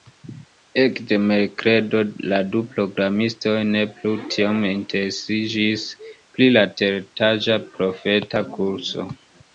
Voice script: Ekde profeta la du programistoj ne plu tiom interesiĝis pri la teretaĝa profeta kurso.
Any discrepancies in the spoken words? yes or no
yes